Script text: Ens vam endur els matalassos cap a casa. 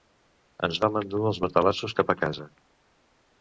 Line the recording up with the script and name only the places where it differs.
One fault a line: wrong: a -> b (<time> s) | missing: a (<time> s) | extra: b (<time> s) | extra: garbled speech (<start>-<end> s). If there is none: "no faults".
no faults